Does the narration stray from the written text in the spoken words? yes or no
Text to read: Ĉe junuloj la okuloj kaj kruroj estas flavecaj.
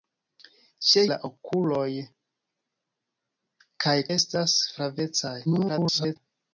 yes